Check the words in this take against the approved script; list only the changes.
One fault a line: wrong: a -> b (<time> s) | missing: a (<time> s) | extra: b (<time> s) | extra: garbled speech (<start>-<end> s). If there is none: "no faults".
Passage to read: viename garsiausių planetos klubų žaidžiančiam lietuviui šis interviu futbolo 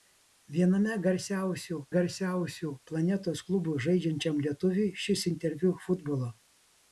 extra: garsiausių (1.9 s)